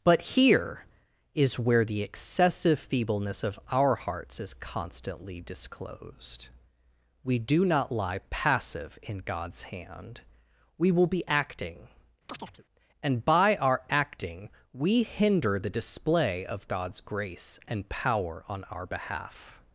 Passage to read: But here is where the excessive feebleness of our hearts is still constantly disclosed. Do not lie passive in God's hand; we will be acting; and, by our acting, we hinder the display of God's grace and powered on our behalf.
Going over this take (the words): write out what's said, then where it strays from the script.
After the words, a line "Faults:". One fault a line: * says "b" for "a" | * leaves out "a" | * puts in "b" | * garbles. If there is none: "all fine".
But here is where the excessive feebleness of our hearts is constantly disclosed. We do not lie passive in God's hand; we will be acting; and, by our acting, we hinder the display of God's grace and power on our behalf.
Faults:
* leaves out "still"
* puts in "We"
* says "power" for "powered"